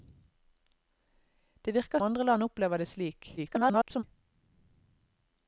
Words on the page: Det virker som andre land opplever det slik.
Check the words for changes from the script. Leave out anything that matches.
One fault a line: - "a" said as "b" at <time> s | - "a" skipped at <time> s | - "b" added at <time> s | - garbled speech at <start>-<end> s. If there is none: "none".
- "som" skipped at 2.0 s
- garbled speech at 3.4-4.0 s